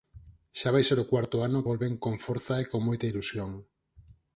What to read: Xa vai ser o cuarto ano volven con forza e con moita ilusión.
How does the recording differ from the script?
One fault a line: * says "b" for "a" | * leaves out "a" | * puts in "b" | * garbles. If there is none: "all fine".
all fine